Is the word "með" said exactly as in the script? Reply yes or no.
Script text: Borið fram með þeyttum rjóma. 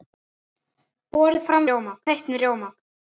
no